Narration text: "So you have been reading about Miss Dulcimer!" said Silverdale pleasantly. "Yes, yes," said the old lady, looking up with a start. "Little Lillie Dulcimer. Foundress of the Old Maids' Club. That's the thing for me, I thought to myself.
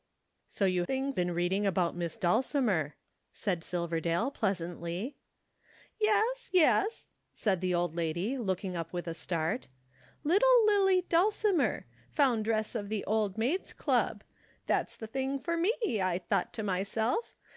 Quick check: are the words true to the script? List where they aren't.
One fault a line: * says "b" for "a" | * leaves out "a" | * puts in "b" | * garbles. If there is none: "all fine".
* says "thing" for "have"